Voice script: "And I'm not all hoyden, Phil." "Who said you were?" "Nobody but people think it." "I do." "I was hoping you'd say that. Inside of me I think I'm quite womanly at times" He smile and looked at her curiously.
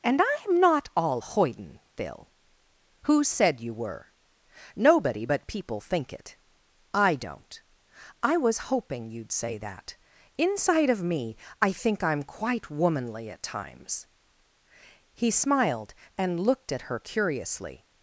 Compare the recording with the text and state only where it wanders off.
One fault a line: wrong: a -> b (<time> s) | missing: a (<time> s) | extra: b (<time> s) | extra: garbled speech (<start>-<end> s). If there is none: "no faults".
wrong: do -> don't (7.1 s)
wrong: smile -> smiled (15.3 s)